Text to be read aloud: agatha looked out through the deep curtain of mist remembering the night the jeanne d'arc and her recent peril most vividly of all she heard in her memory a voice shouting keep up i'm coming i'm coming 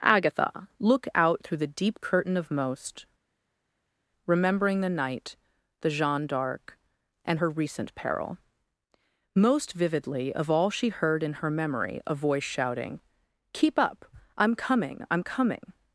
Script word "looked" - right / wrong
wrong